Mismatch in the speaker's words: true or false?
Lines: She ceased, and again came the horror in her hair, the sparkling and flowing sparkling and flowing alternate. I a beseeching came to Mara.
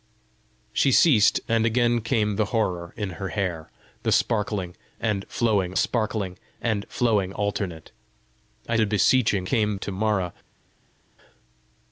false